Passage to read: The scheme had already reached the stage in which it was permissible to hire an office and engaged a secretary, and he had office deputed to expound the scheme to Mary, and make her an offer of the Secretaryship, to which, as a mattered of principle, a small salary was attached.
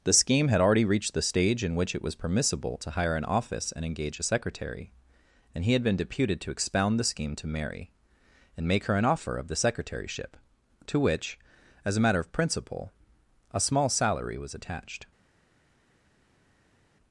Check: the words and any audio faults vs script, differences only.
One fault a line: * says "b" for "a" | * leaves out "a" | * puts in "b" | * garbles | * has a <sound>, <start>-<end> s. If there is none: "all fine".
* says "engage" for "engaged"
* says "been" for "office"
* says "matter" for "mattered"